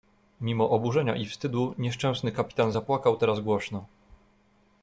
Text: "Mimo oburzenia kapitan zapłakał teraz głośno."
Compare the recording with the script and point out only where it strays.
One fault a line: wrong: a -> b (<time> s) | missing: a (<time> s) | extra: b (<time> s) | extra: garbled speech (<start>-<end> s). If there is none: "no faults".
extra: i wstydu nieszczęsny (1.2 s)